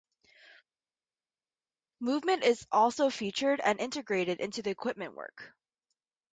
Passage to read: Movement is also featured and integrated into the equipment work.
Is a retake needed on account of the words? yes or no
no